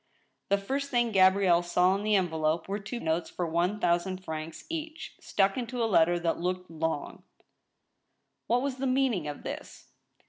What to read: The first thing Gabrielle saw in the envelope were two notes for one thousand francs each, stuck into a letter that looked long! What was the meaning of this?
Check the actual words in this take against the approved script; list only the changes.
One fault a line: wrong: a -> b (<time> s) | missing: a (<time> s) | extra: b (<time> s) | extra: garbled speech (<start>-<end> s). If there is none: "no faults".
no faults